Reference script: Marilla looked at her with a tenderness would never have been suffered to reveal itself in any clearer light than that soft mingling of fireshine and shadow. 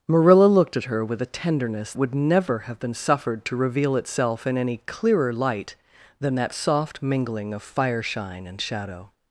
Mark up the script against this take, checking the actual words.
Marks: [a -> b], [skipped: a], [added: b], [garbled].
Marilla looked at her with a tenderness would never have been suffered to reveal itself in any clearer light than that soft mingling of fireshine and shadow.